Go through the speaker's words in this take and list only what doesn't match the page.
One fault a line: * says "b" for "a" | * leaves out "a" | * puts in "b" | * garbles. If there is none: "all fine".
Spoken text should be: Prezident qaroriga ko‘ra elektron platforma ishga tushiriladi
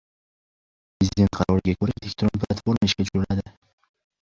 all fine